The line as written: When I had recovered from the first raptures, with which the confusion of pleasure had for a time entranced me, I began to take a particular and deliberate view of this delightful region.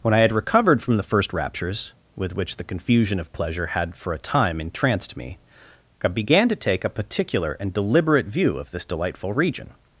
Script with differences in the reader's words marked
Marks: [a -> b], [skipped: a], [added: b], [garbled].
When I had recovered from the first raptures, with which the confusion of pleasure had for a time entranced me, I began to take a particular and deliberate view of this delightful region.